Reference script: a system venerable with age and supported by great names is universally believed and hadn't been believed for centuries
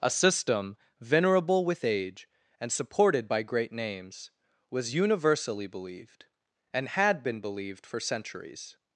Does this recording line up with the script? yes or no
no